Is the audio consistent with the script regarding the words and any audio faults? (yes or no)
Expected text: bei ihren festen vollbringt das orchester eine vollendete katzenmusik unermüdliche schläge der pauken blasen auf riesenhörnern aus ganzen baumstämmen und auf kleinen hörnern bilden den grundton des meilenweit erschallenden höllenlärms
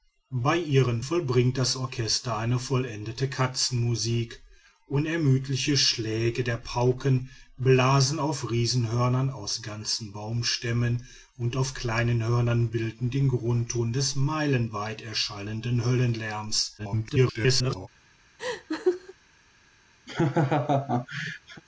no